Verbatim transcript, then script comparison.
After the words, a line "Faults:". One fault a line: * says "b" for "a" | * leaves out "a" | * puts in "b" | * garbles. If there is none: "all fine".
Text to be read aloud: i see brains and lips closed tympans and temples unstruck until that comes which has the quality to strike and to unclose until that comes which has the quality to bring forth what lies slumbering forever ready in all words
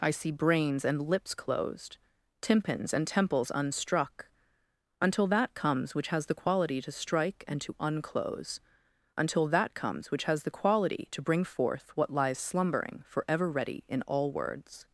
i see brains and lips closed tympans and temples unstruck until that comes which has the quality to strike and to unclose until that comes which has the quality to bring forth what lies slumbering forever ready in all words
Faults:
all fine